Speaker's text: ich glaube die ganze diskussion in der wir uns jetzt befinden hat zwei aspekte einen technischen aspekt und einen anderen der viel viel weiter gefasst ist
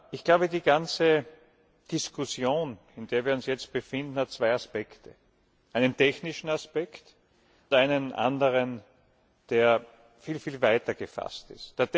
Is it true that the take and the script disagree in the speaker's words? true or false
true